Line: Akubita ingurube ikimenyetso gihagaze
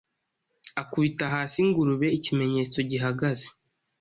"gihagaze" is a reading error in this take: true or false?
false